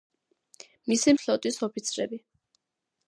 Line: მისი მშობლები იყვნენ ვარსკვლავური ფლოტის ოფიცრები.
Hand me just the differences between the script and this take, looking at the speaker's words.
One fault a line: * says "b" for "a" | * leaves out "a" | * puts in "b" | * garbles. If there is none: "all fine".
* leaves out "მშობლები იყვნენ ვარსკვლავური"